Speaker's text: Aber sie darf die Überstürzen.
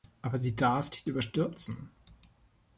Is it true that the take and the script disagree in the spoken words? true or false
false